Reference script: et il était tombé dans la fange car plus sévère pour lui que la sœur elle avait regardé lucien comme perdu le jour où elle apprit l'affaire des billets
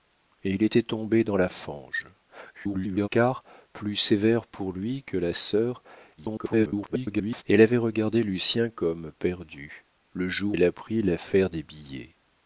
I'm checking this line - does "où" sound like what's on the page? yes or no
no